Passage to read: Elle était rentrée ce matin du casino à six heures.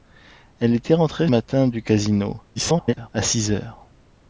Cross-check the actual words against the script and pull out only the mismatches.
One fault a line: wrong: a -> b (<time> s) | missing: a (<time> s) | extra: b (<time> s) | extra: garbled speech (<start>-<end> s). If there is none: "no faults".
missing: ce (1.3 s)
extra: garbled speech (2.6-3.1 s)